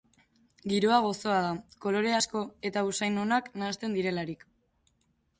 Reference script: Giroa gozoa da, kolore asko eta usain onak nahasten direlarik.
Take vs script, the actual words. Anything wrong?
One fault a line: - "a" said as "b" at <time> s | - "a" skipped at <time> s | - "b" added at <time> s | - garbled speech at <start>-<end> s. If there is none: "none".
none